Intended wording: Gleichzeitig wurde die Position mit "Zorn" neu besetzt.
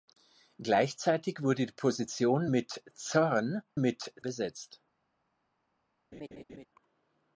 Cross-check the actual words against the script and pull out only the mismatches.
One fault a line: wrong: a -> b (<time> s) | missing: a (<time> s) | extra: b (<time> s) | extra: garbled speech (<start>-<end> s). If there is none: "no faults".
wrong: neu -> mit (3.8 s)